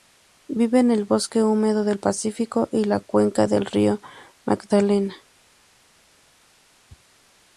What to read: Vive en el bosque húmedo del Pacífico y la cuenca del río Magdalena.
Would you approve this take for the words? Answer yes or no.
yes